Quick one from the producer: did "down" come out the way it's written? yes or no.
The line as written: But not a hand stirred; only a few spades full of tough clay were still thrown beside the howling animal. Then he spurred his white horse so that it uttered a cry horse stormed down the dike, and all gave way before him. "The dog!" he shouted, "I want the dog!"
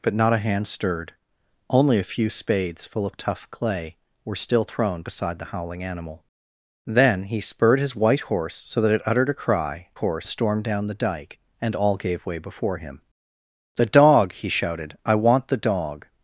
yes